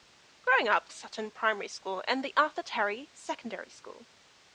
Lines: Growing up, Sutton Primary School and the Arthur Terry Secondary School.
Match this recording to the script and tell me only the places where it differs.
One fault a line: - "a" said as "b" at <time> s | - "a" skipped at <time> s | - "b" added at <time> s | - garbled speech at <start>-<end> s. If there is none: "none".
none